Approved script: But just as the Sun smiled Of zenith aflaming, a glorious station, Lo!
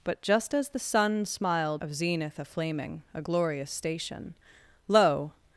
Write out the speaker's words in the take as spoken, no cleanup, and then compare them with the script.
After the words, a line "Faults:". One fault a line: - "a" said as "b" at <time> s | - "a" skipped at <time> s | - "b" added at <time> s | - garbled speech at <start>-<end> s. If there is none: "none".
But just as the Sun smiled Of zenith aflaming, a glorious station, Lo!
Faults:
none